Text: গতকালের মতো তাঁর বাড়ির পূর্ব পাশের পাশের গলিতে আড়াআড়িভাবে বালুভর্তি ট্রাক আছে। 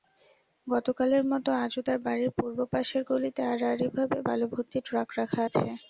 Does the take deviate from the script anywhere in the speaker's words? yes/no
yes